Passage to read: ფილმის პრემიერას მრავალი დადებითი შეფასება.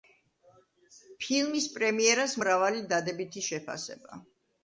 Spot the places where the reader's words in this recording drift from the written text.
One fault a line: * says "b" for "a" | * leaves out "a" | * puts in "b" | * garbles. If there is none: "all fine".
all fine